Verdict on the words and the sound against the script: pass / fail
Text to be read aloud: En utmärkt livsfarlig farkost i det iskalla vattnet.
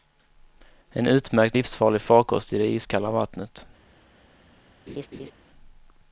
fail